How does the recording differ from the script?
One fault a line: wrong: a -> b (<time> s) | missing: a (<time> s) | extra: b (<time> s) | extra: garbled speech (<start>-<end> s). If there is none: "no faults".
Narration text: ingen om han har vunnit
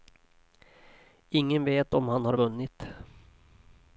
extra: vet (1.6 s)